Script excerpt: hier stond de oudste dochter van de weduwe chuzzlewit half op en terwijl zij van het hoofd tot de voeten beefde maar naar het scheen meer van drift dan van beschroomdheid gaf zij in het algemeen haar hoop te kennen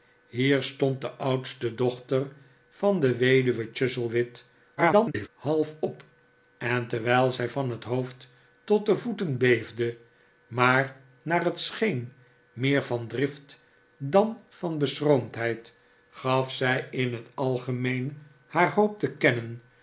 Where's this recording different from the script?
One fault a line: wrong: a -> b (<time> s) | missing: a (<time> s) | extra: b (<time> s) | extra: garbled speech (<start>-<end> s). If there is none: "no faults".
extra: garbled speech (4.8-5.3 s)